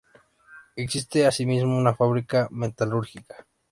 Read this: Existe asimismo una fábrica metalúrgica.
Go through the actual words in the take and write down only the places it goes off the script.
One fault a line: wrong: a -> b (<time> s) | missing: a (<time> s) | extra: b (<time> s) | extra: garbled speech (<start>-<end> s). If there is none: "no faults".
no faults